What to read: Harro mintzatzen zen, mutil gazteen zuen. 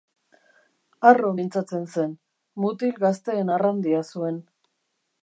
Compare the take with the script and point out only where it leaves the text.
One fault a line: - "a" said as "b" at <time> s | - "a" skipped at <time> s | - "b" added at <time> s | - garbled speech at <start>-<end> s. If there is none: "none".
- "arrandia" added at 3.5 s